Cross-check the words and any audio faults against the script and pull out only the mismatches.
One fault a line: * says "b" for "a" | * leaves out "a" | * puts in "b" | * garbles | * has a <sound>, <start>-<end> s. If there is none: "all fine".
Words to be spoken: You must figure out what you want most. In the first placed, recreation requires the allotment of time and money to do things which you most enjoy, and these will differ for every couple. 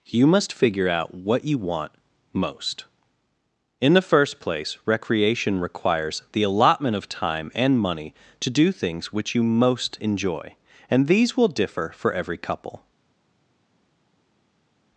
* says "place" for "placed"